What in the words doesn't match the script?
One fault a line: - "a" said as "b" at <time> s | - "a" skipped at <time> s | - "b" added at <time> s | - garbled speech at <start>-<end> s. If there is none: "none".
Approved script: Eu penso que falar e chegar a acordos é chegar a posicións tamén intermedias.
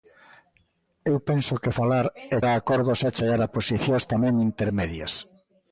- "chegar" skipped at 2.4 s